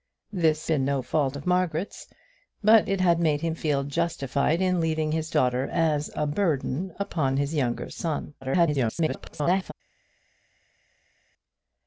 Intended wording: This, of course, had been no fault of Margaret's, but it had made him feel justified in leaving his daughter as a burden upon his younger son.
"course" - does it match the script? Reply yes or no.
no